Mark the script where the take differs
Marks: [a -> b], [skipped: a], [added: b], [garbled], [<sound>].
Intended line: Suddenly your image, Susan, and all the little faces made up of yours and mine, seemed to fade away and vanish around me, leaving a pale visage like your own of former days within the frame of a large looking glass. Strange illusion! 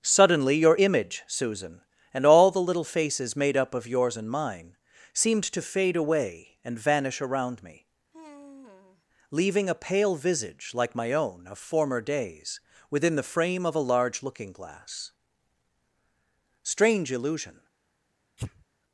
Suddenly your image, Susan, and all the little faces made up of yours and mine, seemed to fade away and vanish around me, [sigh] leaving a pale visage like [your -> my] own of former days within the frame of a large looking glass. Strange illusion! [sneeze]